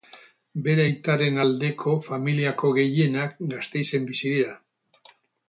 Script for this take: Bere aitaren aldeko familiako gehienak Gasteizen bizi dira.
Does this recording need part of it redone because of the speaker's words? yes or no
no